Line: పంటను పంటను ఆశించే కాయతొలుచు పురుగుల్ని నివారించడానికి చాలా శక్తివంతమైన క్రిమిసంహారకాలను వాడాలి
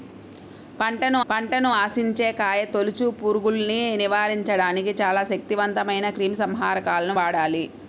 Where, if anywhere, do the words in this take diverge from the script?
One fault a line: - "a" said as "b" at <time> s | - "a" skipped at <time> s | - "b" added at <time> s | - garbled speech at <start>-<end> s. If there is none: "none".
none